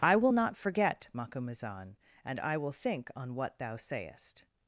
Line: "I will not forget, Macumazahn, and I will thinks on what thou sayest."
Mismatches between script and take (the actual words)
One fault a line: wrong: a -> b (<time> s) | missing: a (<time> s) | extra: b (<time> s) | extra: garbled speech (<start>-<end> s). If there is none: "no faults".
wrong: thinks -> think (2.7 s)